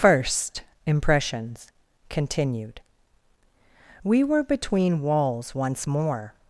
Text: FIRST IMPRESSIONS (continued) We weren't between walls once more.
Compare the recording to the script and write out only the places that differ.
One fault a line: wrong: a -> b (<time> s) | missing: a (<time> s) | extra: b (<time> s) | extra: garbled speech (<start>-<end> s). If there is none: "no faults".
wrong: weren't -> were (4.2 s)